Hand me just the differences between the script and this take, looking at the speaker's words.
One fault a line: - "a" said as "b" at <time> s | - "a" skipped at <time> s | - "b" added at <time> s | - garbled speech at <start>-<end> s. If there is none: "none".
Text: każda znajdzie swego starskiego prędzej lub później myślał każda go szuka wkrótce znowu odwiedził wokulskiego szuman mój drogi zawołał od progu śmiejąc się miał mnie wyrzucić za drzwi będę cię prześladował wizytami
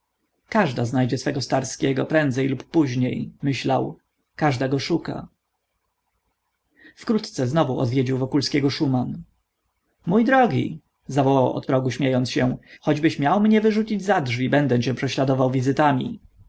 - "choćbyś" added at 12.8 s